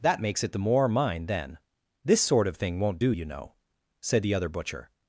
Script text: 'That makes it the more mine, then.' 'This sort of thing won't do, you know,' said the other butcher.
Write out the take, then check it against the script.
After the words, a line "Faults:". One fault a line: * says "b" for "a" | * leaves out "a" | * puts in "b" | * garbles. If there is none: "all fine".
'That makes it the more mine, then.' 'This sort of thing won't do, you know,' said the other butcher.
Faults:
all fine